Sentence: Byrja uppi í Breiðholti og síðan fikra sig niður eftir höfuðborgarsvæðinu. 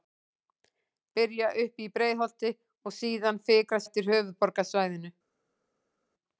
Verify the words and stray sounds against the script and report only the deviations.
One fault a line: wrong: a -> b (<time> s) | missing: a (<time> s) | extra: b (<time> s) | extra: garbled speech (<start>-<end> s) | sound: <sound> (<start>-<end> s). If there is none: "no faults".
missing: sig niður (3.8 s)